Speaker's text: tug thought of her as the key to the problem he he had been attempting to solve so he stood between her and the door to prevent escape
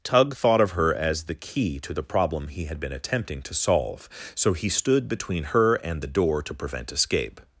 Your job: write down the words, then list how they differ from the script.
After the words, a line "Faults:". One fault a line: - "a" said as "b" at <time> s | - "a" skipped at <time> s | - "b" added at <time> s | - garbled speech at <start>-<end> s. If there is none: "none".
tug thought of her as the key to the problem he had been attempting to solve so he stood between her and the door to prevent escape
Faults:
- "he" skipped at 2.6 s